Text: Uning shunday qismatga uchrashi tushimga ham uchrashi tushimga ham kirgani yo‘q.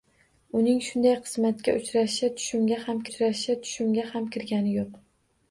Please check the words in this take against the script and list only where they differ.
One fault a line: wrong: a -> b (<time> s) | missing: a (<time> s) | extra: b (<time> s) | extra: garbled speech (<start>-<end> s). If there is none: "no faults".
no faults